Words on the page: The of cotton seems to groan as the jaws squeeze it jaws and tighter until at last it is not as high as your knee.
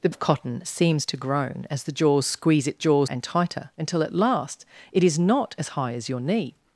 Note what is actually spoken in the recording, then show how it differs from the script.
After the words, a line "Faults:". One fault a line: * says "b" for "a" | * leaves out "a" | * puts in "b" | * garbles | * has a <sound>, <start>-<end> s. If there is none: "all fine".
The of cotton seems to groan as the jaws squeeze it jaws and tighter until at last it is not as high as your knee.
Faults:
all fine